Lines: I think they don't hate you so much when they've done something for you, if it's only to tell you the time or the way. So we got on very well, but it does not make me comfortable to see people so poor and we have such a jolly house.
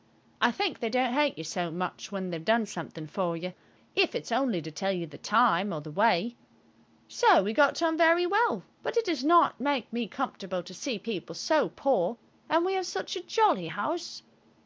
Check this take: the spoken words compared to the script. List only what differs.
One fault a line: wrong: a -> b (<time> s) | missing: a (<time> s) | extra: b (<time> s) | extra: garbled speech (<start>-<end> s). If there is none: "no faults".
no faults